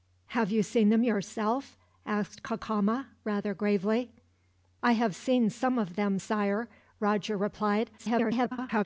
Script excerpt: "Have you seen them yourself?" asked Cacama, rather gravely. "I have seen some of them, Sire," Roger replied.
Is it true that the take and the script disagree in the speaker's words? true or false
true